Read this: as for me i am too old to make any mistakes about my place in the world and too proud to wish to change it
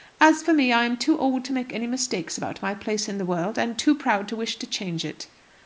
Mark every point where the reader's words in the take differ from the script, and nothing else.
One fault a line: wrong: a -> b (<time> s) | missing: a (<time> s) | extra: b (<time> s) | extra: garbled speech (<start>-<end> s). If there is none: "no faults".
no faults